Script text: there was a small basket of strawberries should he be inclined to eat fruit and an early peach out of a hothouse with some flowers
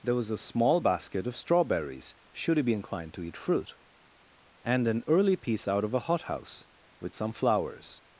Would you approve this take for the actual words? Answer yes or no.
no